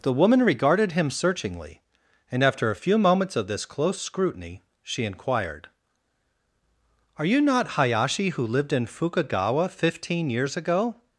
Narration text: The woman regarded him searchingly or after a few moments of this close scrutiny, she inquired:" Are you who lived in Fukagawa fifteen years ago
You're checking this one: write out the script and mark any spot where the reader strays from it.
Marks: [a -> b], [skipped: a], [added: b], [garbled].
The woman regarded him searchingly [or -> and] after a few moments of this close scrutiny, she inquired:" Are you [added: not Hayashi] who lived in Fukagawa fifteen years ago